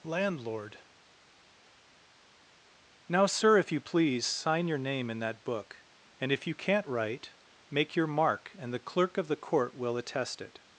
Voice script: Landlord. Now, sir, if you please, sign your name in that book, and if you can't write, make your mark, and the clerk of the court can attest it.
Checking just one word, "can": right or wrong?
wrong